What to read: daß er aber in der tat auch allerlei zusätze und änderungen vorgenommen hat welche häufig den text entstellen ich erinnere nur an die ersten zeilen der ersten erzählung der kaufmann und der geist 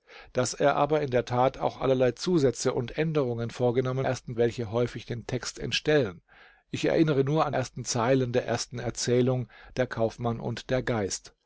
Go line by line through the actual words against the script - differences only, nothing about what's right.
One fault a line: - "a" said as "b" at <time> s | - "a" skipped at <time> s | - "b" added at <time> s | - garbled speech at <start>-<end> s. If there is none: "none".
- "hat" said as "ersten" at 4.0 s
- "die" skipped at 7.5 s